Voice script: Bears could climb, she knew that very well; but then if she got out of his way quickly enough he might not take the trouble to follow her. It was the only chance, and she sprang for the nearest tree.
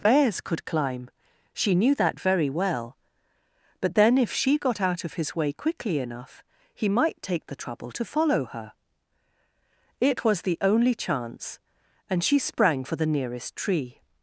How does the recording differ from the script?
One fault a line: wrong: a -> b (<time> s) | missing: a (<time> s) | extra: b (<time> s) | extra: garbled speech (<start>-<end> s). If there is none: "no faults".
missing: not (7.2 s)